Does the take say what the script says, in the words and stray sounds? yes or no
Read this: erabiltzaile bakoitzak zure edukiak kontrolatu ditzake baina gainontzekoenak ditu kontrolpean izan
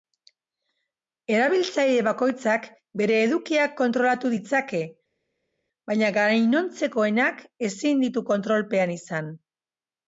no